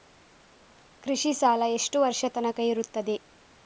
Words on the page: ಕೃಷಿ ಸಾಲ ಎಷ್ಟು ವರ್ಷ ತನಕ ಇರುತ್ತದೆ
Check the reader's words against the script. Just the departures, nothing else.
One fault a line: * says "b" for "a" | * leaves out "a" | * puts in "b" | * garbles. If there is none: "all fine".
all fine